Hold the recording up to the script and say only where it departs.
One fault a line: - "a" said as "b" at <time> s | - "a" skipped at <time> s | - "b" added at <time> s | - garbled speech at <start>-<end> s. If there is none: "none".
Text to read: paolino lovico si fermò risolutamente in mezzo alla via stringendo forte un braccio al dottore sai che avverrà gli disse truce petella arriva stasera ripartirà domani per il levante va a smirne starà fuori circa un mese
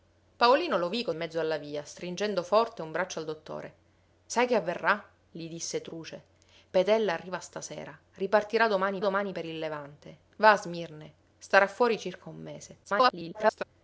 - "si fermò risolutamente" skipped at 1.1 s
- "domani" added at 9.0 s
- garbled speech at 12.8-13.6 s